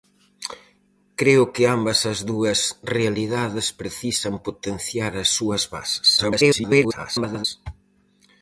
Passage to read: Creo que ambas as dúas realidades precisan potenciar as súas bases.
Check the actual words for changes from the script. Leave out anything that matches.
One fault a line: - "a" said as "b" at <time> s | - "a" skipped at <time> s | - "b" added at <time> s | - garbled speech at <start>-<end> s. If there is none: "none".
- garbled speech at 6.2-7.5 s